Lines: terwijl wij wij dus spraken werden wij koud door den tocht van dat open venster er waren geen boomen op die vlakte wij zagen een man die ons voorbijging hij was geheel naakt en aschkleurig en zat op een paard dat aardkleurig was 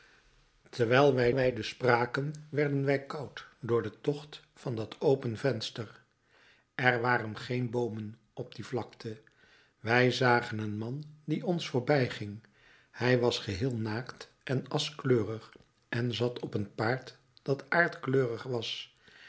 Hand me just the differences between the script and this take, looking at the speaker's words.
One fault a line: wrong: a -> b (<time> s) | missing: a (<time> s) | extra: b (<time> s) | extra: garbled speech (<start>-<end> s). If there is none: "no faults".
no faults